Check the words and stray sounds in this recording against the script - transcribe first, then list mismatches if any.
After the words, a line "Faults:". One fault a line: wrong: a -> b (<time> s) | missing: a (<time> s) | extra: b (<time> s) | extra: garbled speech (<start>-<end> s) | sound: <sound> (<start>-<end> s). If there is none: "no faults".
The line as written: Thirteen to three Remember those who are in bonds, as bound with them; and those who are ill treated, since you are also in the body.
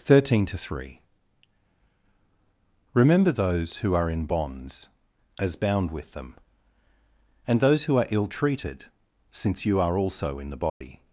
Thirteen to three Remember those who are in bonds, as bound with them; and those who are ill treated, since you are also in the body.
Faults:
sound: dropout (10.7-10.8 s)